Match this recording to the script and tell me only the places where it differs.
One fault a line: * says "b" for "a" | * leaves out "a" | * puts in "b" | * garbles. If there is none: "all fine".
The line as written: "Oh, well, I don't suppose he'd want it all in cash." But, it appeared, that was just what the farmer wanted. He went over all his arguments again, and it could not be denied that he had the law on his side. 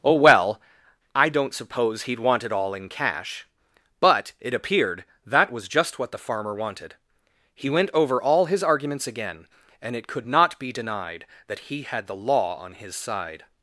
all fine